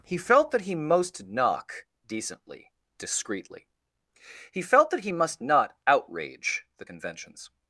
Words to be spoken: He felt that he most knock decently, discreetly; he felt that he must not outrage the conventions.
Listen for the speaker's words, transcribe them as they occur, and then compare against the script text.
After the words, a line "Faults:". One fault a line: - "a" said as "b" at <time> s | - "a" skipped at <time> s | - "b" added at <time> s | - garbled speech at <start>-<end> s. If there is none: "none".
He felt that he most knock decently, discreetly; he felt that he must not outrage the conventions.
Faults:
none